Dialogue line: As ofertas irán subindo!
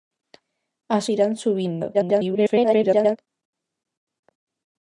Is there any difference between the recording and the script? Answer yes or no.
yes